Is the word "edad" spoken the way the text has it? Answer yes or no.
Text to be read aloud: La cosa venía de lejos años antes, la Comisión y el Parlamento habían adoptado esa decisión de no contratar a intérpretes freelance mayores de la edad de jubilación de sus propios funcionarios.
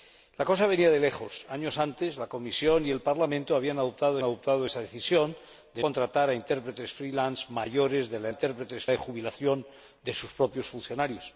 no